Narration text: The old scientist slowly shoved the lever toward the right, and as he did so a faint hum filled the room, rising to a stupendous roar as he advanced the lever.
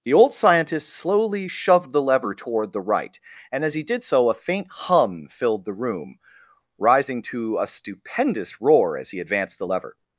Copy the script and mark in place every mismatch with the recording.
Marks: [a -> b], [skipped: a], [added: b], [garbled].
The old scientist slowly shoved the lever toward the right, and as he did so a faint hum filled the room, rising to a stupendous roar as he advanced the lever.